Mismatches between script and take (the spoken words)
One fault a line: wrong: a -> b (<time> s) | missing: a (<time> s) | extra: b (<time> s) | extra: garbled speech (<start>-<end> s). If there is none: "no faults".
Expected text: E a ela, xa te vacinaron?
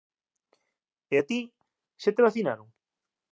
wrong: ela -> ti (1.3 s)